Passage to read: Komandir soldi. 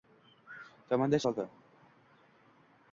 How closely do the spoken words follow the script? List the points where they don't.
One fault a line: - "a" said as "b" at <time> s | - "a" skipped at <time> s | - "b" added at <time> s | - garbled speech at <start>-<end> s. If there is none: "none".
none